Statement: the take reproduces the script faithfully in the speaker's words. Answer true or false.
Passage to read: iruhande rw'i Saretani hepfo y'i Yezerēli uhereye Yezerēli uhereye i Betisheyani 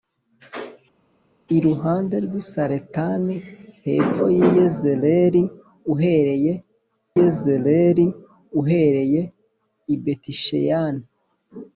true